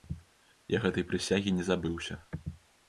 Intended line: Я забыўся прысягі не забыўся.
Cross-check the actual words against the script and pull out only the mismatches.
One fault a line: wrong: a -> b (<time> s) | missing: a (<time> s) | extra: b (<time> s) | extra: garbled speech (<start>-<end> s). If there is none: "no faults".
wrong: забыўся -> гэтай (0.8 s)